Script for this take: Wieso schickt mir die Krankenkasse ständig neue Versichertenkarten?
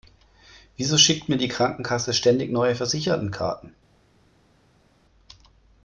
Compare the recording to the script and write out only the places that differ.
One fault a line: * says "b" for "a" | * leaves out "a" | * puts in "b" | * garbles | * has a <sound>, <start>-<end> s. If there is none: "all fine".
all fine